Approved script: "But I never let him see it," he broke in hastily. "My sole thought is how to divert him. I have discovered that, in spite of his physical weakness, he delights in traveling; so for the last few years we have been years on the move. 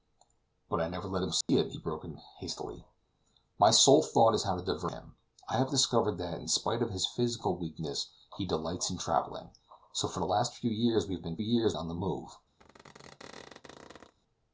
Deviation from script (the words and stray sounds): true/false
true